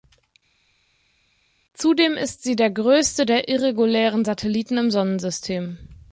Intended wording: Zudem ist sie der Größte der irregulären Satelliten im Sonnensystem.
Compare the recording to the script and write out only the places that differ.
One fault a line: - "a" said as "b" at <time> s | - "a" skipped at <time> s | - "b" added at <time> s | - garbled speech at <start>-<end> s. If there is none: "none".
none